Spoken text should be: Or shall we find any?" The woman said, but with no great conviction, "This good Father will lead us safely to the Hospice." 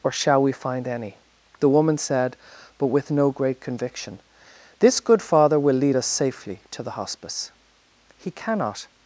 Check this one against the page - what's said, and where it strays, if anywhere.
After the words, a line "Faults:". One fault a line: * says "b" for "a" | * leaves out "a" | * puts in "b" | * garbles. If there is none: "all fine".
Or shall we find any?" The woman said, but with no great conviction, "This good Father will lead us safely to the Hospice." "He cannot
Faults:
* puts in "He cannot"